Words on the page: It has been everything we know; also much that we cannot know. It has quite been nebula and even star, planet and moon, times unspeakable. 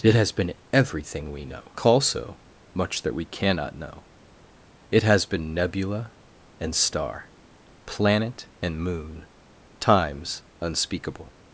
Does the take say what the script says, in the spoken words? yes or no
no